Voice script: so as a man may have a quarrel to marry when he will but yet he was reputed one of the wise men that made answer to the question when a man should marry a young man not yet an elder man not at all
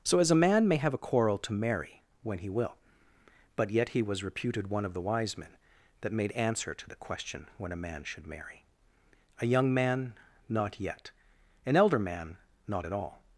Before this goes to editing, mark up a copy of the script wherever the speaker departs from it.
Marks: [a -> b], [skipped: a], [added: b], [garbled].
so as a man may have a quarrel to marry when he will but yet he was reputed one of the wise men that made answer to the question when a man should marry a young man not yet an elder man not at all